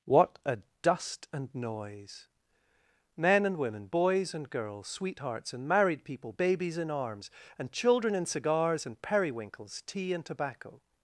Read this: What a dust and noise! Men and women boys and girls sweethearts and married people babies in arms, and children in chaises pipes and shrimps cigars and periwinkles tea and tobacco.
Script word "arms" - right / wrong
right